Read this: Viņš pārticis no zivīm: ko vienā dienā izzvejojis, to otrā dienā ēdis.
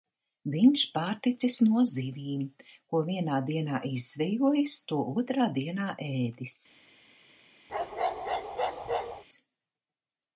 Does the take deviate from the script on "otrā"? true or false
false